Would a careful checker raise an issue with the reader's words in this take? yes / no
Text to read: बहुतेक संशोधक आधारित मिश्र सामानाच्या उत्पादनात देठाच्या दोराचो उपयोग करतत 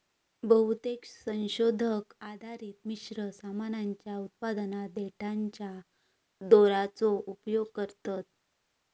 no